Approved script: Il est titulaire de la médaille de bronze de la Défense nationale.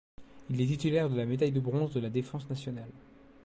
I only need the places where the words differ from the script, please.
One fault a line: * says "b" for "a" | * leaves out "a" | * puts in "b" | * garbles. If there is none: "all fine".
all fine